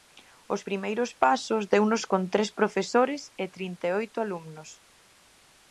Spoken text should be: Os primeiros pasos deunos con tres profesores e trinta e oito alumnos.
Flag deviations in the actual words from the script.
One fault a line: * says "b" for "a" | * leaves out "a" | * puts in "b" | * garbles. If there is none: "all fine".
all fine